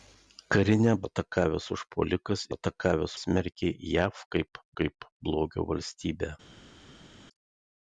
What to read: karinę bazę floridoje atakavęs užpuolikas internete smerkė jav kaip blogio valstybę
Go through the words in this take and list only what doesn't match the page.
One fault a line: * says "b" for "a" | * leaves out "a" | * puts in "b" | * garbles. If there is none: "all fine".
* leaves out "bazę floridoje"
* says "atakavęs" for "internete"
* puts in "kaip"